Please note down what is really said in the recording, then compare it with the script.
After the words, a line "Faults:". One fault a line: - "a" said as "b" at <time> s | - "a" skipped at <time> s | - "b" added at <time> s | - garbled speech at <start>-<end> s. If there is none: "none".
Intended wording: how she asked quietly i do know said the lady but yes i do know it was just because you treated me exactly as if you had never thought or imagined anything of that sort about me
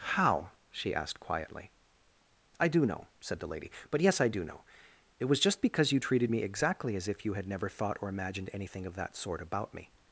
how she asked quietly i do know said the lady but yes i do know it was just because you treated me exactly as if you had never thought or imagined anything of that sort about me
Faults:
none